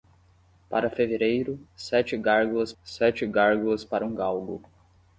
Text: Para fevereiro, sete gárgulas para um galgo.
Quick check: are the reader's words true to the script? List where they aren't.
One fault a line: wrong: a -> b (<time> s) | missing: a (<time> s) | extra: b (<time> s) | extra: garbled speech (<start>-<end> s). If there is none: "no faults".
extra: sete gárgulas (2.8 s)